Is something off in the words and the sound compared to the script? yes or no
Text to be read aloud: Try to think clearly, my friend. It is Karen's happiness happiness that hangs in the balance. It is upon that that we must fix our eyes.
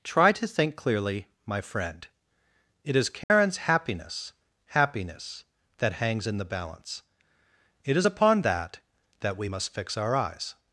yes